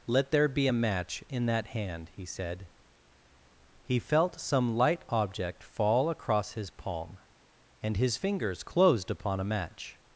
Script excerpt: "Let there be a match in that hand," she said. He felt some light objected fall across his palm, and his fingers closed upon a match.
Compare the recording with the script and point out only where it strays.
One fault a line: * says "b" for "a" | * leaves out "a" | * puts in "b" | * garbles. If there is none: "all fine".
* says "he" for "she"
* says "object" for "objected"